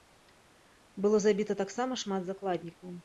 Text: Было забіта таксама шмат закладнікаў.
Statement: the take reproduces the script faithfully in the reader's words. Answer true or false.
true